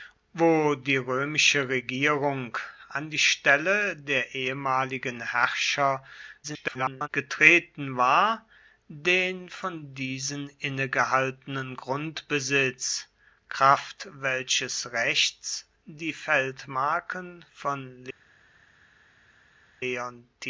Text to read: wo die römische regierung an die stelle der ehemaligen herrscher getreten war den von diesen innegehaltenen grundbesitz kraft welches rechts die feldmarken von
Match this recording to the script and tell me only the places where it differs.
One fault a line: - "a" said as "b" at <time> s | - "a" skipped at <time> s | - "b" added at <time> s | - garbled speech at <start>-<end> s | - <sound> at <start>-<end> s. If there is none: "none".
- garbled speech at 6.4-7.1 s